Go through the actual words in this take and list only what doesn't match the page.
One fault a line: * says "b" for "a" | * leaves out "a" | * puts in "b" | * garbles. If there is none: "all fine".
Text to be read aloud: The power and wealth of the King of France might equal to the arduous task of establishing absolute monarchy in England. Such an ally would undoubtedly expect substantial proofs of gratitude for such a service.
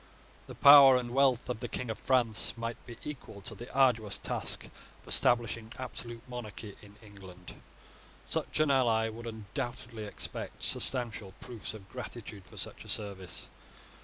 * puts in "be"